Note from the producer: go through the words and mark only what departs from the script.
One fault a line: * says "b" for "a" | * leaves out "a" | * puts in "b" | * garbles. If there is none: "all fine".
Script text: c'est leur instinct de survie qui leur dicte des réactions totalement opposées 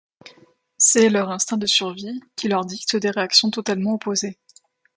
all fine